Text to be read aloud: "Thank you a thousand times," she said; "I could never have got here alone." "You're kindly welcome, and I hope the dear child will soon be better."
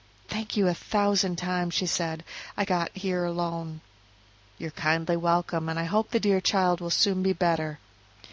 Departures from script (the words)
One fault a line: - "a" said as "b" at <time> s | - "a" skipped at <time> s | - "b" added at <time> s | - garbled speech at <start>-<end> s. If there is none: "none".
- "could never have" skipped at 2.6 s